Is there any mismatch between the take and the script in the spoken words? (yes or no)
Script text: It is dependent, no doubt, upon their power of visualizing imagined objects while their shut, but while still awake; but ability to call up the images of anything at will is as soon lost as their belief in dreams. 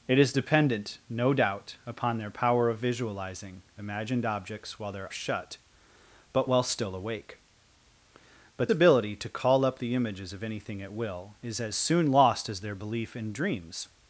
no